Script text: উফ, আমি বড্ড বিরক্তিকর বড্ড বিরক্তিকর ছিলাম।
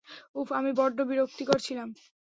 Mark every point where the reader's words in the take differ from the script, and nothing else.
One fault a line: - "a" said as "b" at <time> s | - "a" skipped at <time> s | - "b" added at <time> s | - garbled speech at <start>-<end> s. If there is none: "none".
- "বড্ড বিরক্তিকর" skipped at 1.6 s